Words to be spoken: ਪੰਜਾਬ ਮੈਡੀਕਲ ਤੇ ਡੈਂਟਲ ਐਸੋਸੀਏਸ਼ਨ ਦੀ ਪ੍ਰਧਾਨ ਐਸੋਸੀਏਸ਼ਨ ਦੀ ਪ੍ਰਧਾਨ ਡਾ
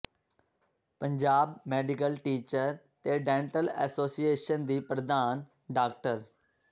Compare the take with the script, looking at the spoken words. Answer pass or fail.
fail